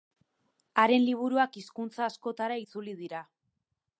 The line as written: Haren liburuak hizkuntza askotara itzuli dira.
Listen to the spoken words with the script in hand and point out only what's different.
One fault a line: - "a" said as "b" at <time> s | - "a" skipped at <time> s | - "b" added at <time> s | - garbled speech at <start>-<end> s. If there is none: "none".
none